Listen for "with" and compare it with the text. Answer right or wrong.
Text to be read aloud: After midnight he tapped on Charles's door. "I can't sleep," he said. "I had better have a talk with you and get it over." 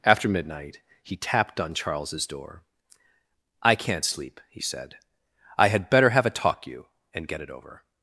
wrong